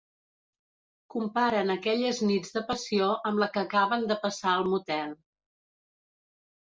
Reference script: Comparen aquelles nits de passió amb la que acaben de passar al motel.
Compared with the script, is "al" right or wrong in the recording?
right